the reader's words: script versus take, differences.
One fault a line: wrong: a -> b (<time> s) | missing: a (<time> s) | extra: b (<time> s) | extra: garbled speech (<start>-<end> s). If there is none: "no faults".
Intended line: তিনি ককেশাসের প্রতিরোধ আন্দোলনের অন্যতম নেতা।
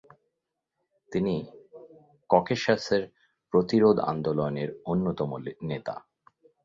no faults